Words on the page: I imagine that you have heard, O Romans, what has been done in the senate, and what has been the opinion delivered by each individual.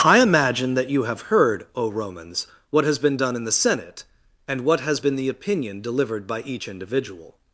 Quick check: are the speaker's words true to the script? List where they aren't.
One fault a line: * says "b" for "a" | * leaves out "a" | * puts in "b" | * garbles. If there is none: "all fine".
all fine